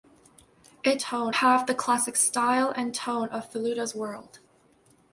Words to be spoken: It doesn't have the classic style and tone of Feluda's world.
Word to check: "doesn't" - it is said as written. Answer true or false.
false